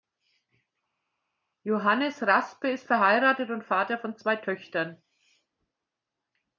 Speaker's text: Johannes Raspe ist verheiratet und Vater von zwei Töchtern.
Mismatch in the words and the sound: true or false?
false